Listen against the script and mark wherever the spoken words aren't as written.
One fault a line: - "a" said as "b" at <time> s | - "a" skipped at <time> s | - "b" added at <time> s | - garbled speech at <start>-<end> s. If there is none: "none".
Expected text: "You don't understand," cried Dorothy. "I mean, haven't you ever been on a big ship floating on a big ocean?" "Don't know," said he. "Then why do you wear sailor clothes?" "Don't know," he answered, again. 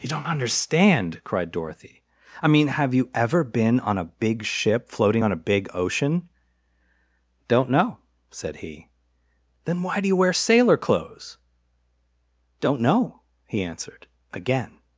- "haven't" said as "have" at 2.7 s